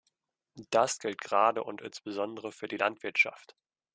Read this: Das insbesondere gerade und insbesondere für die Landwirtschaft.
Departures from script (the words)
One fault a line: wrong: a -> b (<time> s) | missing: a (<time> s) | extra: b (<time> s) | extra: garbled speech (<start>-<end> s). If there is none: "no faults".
wrong: insbesondere -> gilt (1.0 s)